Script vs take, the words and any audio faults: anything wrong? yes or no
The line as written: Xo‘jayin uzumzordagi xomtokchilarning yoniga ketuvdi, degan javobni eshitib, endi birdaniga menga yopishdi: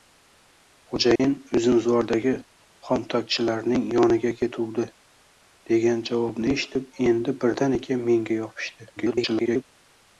yes